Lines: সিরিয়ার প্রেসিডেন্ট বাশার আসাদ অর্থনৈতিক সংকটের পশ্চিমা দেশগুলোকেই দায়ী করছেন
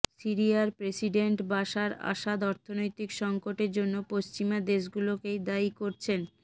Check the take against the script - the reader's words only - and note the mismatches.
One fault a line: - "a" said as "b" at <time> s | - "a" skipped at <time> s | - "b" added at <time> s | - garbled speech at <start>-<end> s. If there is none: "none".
- "জন্য" added at 3.8 s